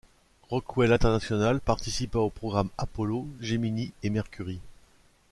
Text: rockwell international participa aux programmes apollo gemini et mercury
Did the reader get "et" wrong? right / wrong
right